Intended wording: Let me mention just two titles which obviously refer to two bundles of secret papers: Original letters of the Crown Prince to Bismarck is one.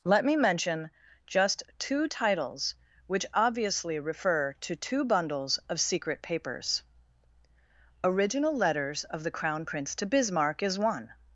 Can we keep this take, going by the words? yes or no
yes